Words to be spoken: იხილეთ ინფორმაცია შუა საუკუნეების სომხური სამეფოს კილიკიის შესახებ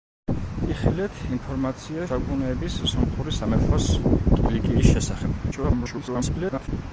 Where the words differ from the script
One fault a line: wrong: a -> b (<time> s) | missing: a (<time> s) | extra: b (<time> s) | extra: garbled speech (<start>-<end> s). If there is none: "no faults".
missing: შუა (2.1 s)
extra: garbled speech (5.5-6.7 s)